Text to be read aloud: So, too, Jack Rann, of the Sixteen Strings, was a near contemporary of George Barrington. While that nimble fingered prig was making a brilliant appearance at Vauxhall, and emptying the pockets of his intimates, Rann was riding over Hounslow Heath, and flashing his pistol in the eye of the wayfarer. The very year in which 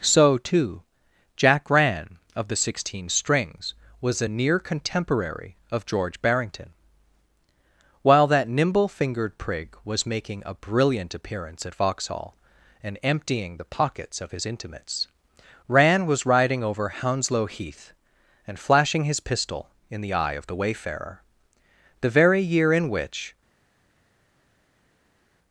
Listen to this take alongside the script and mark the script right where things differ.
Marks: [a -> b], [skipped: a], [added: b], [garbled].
So, too, Jack Rann, of the Sixteen Strings, was a near contemporary of George Barrington. While that nimble fingered prig was making a brilliant appearance at Vauxhall, and emptying the pockets of his intimates, Rann was riding over Hounslow Heath, and flashing his pistol in the eye of the wayfarer. The very year in which